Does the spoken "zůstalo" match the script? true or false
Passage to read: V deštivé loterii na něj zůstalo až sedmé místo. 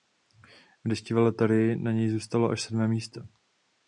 true